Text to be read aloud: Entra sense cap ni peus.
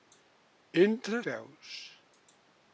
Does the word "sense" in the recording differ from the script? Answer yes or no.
yes